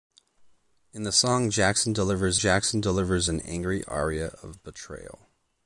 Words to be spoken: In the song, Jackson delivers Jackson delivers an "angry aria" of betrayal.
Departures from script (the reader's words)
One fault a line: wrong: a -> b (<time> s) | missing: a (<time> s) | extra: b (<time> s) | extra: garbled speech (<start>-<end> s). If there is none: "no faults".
no faults